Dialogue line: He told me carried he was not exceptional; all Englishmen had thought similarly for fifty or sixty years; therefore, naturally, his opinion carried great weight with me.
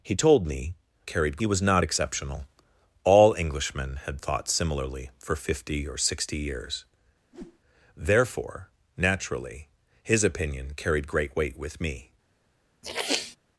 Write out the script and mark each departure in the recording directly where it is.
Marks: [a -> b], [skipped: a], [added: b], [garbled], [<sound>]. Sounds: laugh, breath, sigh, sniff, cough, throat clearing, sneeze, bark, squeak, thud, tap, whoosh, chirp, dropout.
He told me carried he was not exceptional; all Englishmen had thought similarly for fifty or sixty years; [whoosh] therefore, naturally, his opinion carried great weight with me. [sniff]